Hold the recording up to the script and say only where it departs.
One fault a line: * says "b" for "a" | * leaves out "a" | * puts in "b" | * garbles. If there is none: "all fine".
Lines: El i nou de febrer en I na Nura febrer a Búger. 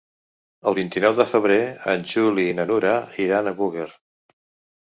* puts in "vint"
* puts in "Juli"
* says "iran" for "febrer"